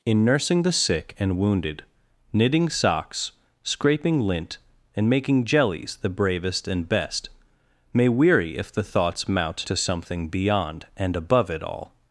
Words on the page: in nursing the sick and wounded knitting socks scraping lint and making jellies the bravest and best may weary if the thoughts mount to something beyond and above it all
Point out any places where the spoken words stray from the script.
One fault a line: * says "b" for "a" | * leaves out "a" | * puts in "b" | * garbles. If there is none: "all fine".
all fine